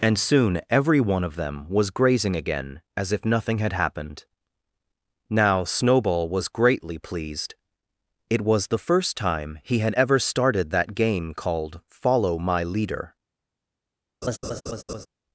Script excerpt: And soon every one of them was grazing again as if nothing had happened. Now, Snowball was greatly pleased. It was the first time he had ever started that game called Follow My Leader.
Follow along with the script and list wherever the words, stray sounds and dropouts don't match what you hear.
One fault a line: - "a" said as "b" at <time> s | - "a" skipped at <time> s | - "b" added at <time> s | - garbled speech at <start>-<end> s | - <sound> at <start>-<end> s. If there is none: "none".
- laugh at 14.2-15.1 s